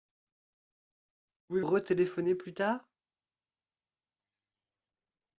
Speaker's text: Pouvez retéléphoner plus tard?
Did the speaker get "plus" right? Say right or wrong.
right